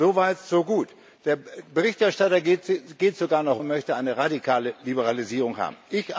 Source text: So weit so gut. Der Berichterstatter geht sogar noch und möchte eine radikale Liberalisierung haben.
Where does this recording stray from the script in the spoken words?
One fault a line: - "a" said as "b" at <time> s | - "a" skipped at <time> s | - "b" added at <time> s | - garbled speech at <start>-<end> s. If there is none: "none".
none